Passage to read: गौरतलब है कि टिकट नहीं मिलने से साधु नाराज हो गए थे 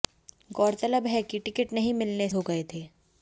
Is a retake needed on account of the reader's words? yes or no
yes